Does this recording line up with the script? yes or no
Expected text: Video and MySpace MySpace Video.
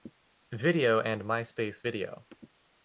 no